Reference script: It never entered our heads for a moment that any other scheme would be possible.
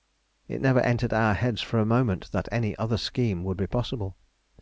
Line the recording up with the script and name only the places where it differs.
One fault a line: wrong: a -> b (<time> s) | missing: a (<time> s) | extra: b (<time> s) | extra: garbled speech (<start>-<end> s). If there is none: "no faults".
no faults